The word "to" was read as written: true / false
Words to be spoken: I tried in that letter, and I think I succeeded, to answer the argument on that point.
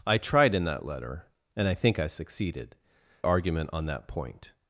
false